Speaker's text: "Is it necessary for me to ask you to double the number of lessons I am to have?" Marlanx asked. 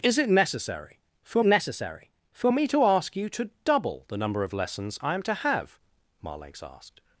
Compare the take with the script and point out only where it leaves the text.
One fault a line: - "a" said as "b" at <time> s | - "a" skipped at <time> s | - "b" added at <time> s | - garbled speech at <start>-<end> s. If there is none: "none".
- "necessary for" added at 1.4 s